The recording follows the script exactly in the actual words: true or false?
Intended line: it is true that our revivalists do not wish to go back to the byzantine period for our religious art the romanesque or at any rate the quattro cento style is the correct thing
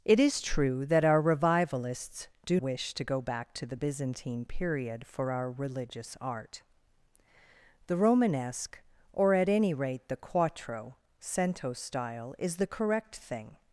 false